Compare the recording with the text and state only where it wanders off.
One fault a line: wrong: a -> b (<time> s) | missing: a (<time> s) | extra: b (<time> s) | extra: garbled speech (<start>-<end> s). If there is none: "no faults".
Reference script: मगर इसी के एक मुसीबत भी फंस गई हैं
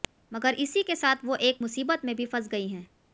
extra: साथ वो (1.0 s)
extra: में (2.1 s)